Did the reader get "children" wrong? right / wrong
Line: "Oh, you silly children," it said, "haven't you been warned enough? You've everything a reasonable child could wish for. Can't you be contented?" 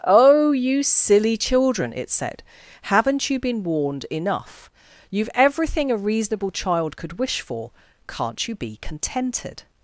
right